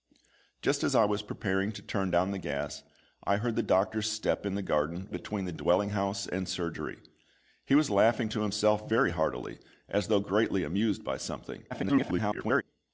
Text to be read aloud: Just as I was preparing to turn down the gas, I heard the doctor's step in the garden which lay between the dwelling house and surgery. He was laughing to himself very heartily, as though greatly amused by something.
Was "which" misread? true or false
true